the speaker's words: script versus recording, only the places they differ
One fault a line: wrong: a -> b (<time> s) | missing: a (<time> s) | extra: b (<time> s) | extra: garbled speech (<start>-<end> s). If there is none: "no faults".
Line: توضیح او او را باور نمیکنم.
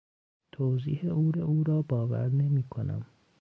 no faults